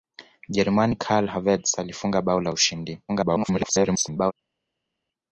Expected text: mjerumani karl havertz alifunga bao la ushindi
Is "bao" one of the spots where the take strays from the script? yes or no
no